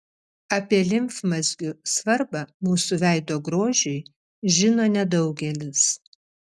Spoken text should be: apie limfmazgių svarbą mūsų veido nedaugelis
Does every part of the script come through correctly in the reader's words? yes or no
no